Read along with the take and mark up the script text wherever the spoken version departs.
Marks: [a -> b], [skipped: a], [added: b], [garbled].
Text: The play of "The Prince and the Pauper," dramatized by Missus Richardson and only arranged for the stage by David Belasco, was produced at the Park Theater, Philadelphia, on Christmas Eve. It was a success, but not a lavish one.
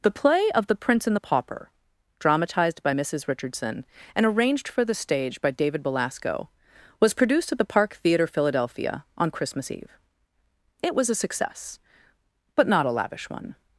The play of "The Prince and the Pauper," dramatized by Missus Richardson and [skipped: only] arranged for the stage by David Belasco, was produced at the Park Theater, Philadelphia, on Christmas Eve. It was a success, but not a lavish one.